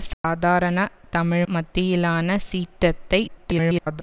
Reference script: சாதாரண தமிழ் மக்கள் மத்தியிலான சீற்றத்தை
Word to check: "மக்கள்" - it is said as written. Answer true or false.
false